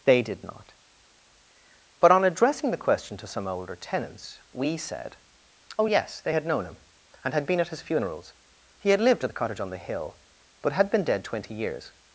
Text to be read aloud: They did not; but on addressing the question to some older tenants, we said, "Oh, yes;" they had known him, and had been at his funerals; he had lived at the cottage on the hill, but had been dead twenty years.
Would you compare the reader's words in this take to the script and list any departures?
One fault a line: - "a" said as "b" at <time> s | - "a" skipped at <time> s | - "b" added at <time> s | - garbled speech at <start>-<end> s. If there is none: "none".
none